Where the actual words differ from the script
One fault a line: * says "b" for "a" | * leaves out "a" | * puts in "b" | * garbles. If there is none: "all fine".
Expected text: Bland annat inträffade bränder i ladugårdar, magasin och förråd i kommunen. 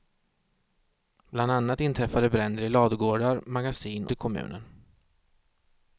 * leaves out "och förråd"